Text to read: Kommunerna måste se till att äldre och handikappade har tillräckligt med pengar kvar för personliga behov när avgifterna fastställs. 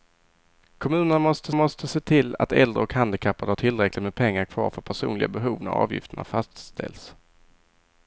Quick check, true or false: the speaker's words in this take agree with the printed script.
false